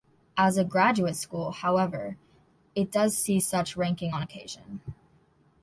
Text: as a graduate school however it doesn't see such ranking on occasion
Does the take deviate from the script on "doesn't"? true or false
true